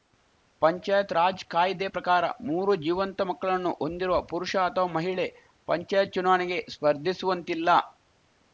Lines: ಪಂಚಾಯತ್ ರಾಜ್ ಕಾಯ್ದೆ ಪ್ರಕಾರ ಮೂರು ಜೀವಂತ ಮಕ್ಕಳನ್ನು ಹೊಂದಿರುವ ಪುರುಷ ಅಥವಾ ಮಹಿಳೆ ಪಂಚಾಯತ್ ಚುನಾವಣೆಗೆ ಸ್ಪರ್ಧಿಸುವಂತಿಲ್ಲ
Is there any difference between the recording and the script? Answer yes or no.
no